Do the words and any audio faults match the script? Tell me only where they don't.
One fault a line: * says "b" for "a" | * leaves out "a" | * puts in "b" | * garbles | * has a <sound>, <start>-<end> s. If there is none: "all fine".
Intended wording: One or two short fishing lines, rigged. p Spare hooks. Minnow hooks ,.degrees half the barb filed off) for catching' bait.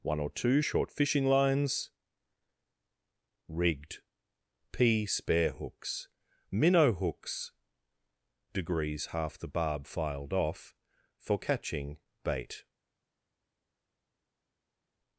all fine